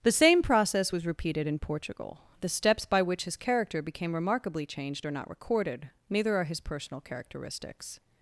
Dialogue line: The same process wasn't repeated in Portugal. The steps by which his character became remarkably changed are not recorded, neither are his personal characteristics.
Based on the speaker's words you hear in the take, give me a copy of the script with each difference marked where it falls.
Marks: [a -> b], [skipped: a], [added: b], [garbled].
The same process [wasn't -> was] repeated in Portugal. The steps by which his character became remarkably changed are not recorded, neither are his personal characteristics.